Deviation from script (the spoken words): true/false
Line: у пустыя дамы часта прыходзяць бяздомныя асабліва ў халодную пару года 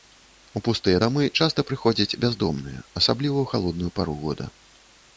false